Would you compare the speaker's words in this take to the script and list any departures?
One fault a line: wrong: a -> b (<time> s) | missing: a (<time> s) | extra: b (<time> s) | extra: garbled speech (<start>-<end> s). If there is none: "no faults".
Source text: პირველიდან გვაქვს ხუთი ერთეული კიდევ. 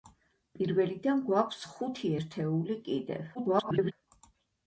extra: garbled speech (3.3-3.9 s)